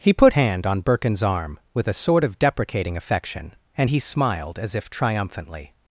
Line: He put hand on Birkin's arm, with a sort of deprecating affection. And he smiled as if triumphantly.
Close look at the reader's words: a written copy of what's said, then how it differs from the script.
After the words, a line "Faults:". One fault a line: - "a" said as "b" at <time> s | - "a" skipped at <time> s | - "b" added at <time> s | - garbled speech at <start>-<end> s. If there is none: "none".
He put hand on Birkin's arm, with a sort of deprecating affection. And he smiled as if triumphantly.
Faults:
none